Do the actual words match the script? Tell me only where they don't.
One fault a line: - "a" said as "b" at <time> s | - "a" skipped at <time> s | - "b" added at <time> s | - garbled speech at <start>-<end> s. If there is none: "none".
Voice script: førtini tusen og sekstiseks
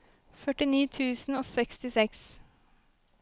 none